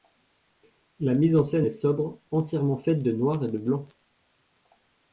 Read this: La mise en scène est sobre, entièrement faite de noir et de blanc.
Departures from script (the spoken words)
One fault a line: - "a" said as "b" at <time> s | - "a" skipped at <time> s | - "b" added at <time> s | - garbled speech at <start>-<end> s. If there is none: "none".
none